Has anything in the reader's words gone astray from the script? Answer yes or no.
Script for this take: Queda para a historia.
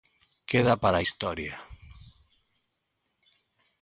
no